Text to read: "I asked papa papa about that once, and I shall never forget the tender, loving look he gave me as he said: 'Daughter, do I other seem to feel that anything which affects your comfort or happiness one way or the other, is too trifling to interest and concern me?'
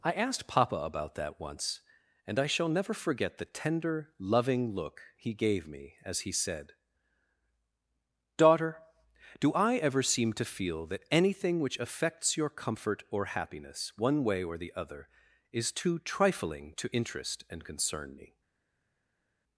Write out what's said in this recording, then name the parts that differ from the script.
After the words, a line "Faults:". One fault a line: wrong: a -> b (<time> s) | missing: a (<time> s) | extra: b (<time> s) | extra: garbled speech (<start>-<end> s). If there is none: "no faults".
"I asked papa about that once, and I shall never forget the tender, loving look he gave me as he said: 'Daughter, do I ever seem to feel that anything which affects your comfort or happiness one way or the other, is too trifling to interest and concern me?'
Faults:
missing: papa (0.8 s)
wrong: other -> ever (9.8 s)